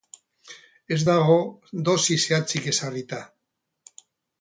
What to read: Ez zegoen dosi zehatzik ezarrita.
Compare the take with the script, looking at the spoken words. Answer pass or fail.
fail